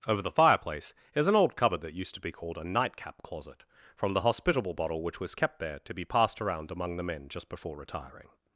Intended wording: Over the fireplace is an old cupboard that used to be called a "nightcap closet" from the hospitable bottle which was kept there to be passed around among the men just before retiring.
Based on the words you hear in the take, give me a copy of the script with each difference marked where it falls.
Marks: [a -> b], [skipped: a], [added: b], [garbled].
Over the fireplace is an old cupboard that used to be called a "nightcap closet" from the hospitable bottle which was kept there to be passed around among the men just before retiring.